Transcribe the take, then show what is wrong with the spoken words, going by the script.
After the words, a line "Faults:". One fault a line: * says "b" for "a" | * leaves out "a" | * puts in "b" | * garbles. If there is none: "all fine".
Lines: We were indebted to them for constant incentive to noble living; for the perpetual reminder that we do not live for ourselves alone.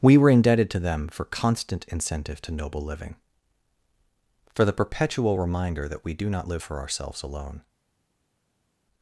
We were indebted to them for constant incentive to noble living; for the perpetual reminder that we do not live for ourselves alone.
Faults:
all fine